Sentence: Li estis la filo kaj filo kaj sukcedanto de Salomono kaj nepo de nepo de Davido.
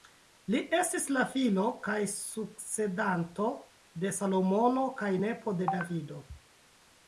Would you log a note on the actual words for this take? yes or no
yes